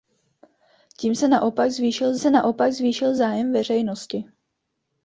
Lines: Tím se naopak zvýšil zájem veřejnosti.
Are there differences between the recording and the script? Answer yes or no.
yes